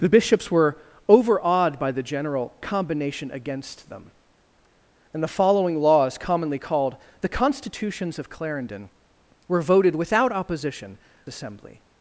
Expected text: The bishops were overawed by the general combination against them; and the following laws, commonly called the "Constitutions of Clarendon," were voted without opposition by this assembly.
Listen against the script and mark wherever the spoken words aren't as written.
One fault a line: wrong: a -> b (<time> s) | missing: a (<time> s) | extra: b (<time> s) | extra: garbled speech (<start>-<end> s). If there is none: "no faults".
missing: by this (11.0 s)